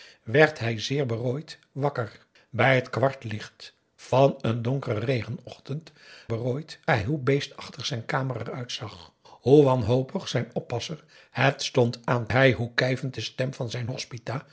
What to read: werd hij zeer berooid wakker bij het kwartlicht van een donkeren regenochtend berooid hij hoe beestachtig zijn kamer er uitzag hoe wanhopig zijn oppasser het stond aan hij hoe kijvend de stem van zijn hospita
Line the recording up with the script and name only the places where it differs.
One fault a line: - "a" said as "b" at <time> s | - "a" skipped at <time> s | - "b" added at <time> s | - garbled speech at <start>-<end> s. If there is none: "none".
none